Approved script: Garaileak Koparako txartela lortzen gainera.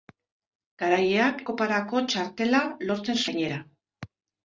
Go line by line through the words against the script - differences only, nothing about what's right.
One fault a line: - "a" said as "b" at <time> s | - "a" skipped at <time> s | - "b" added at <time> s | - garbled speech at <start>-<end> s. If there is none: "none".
none